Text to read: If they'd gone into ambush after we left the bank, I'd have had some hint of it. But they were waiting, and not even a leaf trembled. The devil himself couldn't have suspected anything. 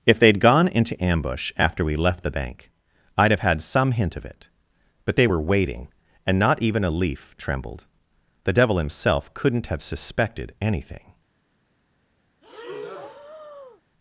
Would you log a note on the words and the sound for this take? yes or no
yes